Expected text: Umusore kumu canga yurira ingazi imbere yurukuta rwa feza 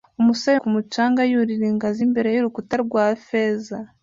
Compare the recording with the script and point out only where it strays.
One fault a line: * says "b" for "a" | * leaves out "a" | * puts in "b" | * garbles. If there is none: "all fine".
all fine